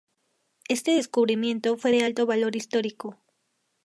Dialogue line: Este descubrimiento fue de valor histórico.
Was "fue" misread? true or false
false